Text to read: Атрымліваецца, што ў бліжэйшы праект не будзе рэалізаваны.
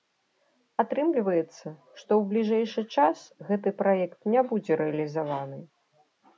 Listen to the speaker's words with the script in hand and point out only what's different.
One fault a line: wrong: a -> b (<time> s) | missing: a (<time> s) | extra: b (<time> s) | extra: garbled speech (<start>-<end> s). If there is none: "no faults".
extra: час гэты (3.0 s)